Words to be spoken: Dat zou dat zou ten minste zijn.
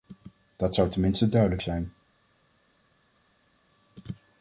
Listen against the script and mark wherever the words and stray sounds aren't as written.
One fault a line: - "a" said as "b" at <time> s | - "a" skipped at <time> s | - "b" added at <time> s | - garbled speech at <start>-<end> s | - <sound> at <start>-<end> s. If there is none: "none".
- "dat zou" skipped at 0.9 s
- "duidelijk" added at 1.3 s